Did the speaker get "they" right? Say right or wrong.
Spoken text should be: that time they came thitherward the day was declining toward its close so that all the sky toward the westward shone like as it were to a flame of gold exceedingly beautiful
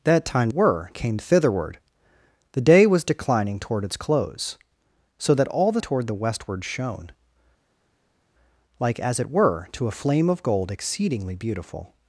wrong